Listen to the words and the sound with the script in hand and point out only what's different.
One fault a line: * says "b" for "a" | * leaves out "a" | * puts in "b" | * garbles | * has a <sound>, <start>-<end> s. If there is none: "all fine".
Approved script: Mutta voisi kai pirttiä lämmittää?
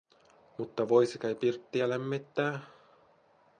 all fine